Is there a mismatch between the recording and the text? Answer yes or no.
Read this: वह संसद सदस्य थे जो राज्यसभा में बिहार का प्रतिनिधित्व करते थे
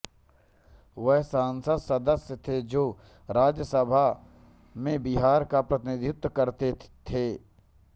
no